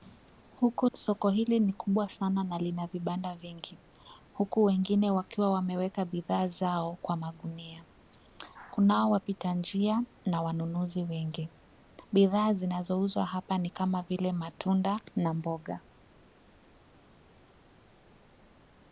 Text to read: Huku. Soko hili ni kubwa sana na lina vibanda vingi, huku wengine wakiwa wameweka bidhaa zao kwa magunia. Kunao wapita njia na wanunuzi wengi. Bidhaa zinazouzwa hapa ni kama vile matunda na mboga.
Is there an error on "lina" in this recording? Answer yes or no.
no